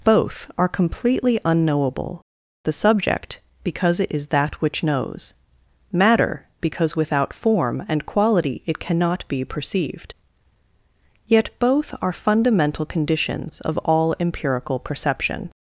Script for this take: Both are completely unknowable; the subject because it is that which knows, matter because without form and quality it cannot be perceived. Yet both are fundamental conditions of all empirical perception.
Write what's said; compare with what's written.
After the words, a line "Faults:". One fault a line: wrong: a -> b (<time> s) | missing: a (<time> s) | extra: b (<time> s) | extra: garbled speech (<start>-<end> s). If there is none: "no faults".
Both are completely unknowable; the subject because it is that which knows, matter because without form and quality it cannot be perceived. Yet both are fundamental conditions of all empirical perception.
Faults:
no faults